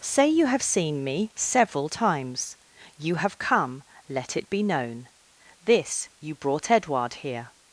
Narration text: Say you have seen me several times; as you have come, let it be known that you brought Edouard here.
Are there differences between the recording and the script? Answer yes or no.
yes